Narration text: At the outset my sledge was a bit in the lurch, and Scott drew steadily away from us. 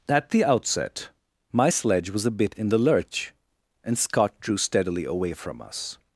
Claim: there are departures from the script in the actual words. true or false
false